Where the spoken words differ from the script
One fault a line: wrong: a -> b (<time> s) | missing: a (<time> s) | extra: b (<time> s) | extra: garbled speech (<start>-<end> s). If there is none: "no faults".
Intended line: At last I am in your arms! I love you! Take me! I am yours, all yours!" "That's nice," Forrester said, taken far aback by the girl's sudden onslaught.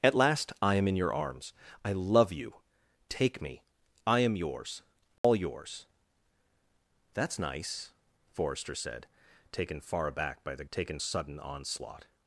wrong: girl's -> taken (10.7 s)